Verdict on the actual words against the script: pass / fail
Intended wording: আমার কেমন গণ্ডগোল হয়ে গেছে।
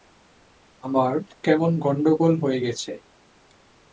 pass